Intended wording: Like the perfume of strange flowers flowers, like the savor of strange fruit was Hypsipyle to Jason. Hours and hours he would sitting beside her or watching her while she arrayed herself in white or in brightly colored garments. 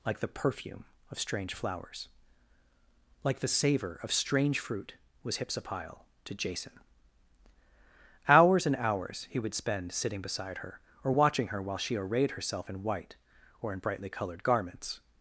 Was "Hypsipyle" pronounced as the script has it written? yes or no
yes